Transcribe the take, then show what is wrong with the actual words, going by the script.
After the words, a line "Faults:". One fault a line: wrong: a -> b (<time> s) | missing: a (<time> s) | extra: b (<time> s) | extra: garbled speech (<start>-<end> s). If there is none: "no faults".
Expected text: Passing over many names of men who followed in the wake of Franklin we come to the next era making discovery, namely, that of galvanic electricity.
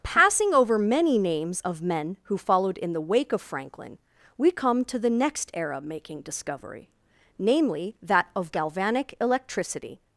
Passing over many names of men who followed in the wake of Franklin we come to the next era making discovery, namely, that of galvanic electricity.
Faults:
no faults